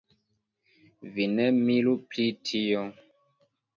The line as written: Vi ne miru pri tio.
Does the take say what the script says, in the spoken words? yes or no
yes